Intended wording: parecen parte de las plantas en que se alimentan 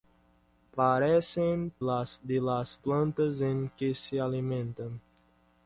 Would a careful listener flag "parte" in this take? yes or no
yes